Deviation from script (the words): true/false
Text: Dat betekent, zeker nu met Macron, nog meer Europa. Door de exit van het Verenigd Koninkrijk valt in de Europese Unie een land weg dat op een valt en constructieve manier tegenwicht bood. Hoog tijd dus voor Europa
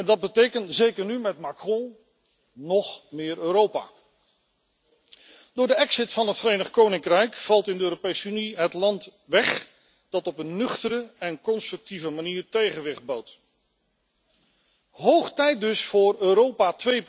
true